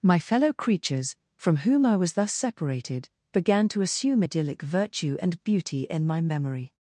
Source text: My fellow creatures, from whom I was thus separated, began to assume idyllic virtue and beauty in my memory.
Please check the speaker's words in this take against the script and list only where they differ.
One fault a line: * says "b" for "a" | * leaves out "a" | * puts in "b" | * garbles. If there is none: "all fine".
all fine